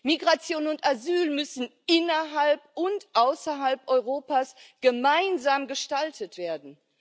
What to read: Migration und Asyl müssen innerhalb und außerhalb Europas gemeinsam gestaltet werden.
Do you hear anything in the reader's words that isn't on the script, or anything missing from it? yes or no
no